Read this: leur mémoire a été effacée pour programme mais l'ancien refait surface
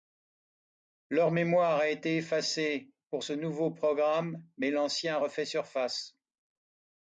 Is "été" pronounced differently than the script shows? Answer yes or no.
no